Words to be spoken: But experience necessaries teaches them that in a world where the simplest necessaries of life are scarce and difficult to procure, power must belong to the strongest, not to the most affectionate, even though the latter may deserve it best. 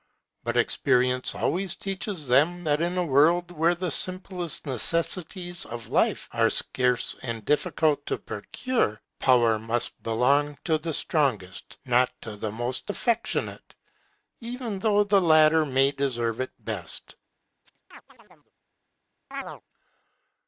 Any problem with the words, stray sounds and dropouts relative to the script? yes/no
yes